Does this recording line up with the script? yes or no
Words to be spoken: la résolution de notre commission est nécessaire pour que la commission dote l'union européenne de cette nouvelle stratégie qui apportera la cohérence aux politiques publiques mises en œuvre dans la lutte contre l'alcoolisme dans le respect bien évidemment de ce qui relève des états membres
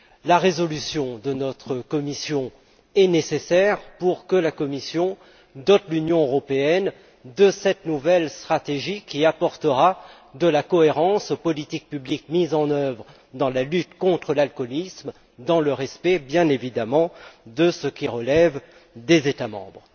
no